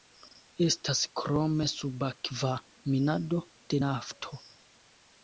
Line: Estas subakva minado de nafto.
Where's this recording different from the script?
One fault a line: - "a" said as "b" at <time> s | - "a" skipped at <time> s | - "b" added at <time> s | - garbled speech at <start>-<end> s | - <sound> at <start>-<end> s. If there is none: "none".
- "krome" added at 1.2 s